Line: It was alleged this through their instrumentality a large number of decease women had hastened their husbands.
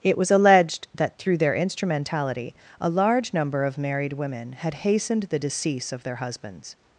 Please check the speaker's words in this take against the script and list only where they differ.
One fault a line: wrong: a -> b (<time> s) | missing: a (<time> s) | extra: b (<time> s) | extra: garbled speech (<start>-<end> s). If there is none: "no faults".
wrong: this -> that (0.9 s)
wrong: decease -> married (3.8 s)
extra: the decease of (5.2 s)